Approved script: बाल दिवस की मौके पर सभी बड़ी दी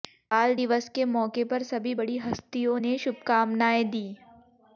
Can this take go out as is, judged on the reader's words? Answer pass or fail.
fail